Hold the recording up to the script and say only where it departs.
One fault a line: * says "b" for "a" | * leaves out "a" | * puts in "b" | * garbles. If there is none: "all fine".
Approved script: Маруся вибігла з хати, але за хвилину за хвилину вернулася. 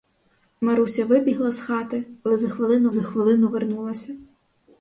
all fine